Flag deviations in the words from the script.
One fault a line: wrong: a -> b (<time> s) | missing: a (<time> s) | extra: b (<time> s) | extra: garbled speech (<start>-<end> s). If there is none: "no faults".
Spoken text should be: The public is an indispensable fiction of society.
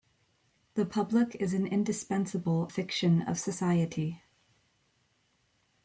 no faults